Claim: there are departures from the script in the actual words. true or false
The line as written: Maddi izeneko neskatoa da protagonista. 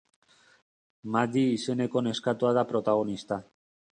false